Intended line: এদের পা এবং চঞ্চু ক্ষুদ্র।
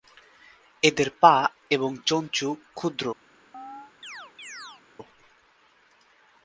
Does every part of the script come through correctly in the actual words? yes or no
yes